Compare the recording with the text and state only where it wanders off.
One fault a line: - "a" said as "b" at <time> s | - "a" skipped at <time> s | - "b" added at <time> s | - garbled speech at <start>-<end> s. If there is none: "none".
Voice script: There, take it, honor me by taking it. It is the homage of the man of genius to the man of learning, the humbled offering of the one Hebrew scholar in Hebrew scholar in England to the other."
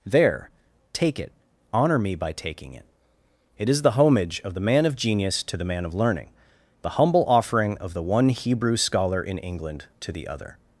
- "humbled" said as "humble" at 7.0 s
- "Hebrew scholar in" skipped at 9.4 s